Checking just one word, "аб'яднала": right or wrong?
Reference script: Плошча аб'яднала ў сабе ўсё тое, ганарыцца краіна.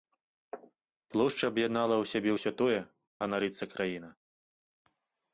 right